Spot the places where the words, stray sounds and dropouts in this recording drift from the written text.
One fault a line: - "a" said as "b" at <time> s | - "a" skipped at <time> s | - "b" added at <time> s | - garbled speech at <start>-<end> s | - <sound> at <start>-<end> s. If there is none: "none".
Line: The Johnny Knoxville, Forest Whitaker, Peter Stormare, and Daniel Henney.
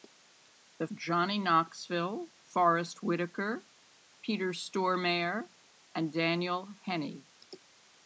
none